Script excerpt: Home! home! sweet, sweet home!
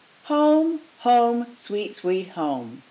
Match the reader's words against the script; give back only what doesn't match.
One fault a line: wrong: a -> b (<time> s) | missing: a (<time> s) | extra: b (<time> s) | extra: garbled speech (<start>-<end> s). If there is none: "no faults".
no faults